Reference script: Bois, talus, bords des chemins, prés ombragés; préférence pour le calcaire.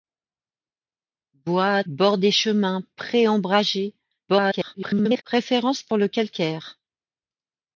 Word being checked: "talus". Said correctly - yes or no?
no